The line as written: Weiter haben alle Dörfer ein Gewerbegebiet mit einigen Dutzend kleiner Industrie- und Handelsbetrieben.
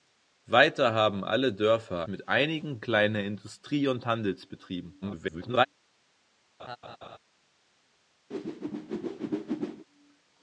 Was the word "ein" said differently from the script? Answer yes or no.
yes